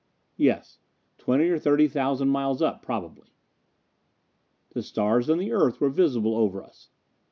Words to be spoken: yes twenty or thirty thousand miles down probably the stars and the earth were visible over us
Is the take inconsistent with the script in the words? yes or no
yes